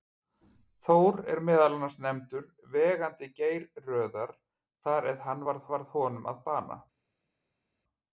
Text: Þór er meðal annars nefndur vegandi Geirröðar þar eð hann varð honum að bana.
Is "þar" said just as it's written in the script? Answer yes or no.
yes